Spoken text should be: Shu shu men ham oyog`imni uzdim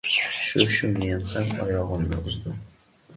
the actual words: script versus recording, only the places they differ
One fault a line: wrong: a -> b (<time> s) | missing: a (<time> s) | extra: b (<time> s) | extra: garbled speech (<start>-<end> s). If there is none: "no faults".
no faults